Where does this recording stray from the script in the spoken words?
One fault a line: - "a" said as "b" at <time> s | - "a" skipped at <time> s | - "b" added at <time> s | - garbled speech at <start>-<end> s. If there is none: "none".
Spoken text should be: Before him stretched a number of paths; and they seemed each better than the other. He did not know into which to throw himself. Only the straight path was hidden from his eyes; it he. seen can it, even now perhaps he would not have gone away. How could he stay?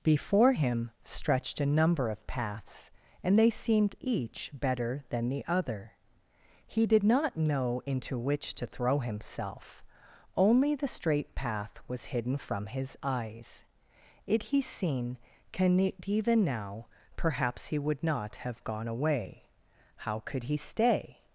none